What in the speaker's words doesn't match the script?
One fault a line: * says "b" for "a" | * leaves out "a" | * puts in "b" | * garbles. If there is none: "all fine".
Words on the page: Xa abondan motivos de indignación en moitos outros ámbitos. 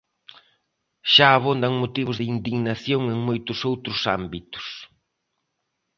all fine